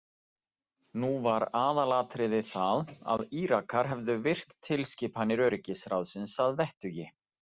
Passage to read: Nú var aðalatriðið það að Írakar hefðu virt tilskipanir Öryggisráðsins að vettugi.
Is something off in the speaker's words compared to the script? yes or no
no